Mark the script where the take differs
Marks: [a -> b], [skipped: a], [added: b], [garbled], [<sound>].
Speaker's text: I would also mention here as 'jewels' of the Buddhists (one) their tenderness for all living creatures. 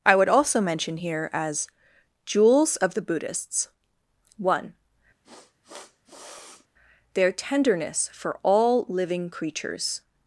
I would also mention here as 'jewels' of the Buddhists (one) [sniff] their tenderness for all living creatures.